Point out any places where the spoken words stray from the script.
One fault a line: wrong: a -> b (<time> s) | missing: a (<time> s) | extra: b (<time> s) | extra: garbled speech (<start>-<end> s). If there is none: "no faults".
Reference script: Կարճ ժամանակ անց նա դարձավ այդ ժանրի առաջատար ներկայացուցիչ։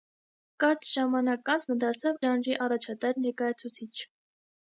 missing: այդ (2.2 s)